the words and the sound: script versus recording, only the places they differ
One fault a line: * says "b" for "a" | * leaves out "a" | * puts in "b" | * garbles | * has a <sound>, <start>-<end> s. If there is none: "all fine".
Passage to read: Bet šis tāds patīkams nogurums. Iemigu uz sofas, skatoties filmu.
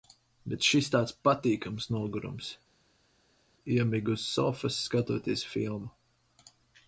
all fine